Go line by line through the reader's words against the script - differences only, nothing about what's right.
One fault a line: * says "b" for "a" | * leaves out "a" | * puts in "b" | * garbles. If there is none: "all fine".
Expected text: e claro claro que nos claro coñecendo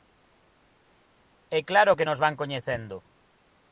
* leaves out "claro"
* says "van" for "claro"